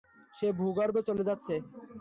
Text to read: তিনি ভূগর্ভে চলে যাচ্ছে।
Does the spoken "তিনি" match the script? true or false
false